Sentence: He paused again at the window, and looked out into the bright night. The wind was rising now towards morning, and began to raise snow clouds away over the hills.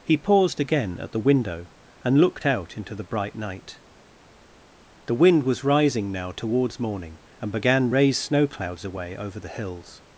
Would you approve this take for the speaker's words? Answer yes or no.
no